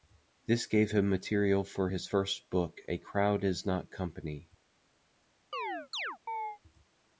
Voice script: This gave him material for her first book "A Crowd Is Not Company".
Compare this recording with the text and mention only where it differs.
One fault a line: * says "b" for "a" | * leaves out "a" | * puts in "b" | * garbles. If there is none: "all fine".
* says "his" for "her"